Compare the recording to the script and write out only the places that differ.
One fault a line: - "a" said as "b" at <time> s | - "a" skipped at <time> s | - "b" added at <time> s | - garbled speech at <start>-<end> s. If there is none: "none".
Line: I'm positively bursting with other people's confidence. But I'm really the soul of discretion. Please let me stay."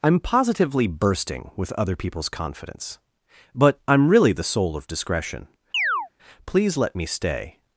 none